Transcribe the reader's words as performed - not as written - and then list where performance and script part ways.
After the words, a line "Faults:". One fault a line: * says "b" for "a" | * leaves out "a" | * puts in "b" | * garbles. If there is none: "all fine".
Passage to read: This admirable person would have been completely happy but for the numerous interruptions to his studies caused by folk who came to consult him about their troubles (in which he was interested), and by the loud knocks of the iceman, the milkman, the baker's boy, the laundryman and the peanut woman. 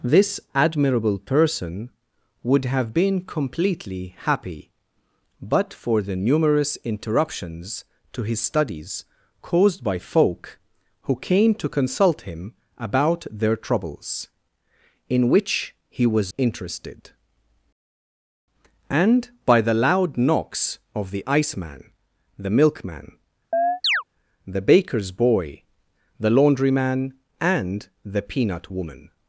This admirable person would have been completely happy but for the numerous interruptions to his studies caused by folk who came to consult him about their troubles (in which he was interested), and by the loud knocks of the iceman, the milkman, the baker's boy, the laundryman and the peanut woman.
Faults:
all fine